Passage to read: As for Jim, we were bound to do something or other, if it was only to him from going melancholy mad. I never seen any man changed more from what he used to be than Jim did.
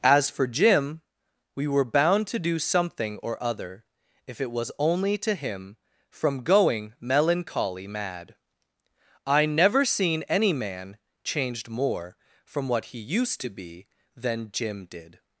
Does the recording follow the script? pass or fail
pass